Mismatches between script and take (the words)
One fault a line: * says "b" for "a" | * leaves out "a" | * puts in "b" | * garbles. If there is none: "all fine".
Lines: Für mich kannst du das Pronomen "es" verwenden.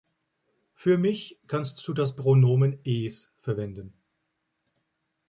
all fine